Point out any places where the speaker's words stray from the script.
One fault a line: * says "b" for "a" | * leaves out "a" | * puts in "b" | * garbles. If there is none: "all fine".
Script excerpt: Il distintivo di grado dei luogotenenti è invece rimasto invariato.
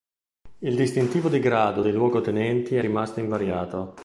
* leaves out "invece"